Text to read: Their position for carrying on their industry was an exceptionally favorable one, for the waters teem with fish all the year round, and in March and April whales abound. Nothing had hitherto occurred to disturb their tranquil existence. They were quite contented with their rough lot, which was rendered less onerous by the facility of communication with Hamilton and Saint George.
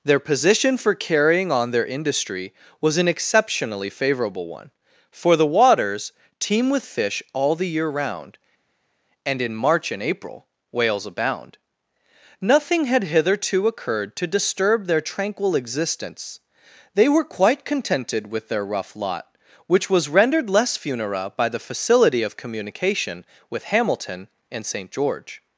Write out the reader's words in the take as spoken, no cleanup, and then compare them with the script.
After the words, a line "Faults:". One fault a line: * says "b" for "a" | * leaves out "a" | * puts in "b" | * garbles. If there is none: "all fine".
Their position for carrying on their industry was an exceptionally favorable one, for the waters teem with fish all the year round, and in March and April whales abound. Nothing had hitherto occurred to disturb their tranquil existence. They were quite contented with their rough lot, which was rendered less funera by the facility of communication with Hamilton and Saint George.
Faults:
* says "funera" for "onerous"